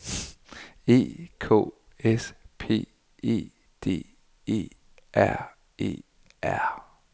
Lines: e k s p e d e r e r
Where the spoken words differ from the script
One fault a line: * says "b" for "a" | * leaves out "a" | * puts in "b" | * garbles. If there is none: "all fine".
all fine